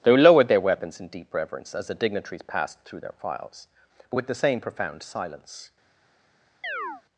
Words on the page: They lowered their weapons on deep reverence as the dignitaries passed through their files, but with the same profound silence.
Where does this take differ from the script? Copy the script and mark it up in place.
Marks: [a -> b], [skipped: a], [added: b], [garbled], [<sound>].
They lowered their weapons [on -> in] deep reverence as the dignitaries passed through their files, but with the same profound silence. [chirp]